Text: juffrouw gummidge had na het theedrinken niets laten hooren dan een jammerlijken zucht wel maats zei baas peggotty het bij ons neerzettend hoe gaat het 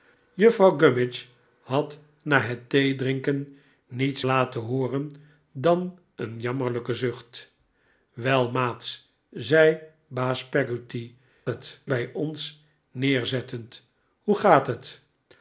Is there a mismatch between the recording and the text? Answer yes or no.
no